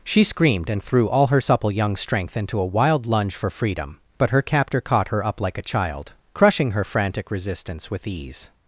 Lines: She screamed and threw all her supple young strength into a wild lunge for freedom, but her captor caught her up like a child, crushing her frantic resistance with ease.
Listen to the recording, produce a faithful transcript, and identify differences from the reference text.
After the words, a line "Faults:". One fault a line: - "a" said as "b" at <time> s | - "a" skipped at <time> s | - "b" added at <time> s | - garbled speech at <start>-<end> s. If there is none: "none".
She screamed and threw all her supple young strength into a wild lunge for freedom, but her captor caught her up like a child, crushing her frantic resistance with ease.
Faults:
none